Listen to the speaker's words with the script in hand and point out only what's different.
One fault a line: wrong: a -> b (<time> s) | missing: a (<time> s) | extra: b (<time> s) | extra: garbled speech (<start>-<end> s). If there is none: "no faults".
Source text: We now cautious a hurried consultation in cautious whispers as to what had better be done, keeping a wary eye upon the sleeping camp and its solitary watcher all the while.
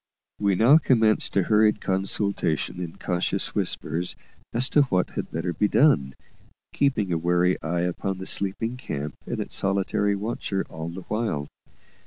wrong: cautious -> commenced (0.8 s)